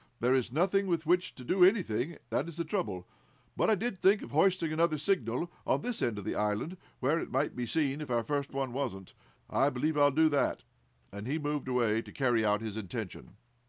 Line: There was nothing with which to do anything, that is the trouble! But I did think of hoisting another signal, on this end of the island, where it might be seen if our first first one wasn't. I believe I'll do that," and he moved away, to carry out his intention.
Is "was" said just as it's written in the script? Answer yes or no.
no